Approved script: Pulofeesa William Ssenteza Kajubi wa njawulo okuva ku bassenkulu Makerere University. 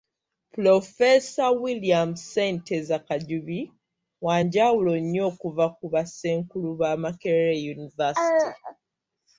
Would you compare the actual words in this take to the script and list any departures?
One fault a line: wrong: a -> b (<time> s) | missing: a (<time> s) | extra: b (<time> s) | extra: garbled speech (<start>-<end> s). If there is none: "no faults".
extra: nnyo (5.0 s)
extra: ba (6.8 s)